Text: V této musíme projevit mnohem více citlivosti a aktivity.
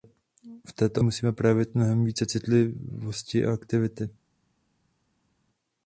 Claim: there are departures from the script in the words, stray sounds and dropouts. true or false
false